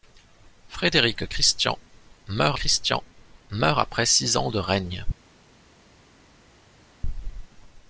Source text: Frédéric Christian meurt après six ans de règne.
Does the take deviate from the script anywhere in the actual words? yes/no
yes